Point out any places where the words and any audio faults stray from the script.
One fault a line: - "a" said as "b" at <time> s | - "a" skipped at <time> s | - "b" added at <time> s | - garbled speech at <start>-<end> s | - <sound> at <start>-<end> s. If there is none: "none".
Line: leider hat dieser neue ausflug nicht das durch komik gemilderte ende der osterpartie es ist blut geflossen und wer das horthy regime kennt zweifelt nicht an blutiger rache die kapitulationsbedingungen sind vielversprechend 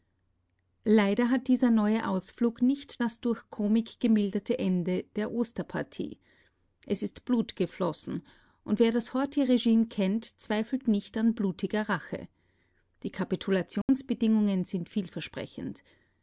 - dropout at 13.8-13.9 s